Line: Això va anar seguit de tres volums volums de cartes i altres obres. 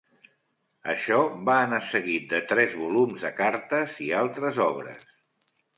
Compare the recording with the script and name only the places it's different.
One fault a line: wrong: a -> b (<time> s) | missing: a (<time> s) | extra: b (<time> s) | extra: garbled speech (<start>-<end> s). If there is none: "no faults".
missing: volums (3.3 s)